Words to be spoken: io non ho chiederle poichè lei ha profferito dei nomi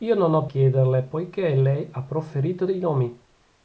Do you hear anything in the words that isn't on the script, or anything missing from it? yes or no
no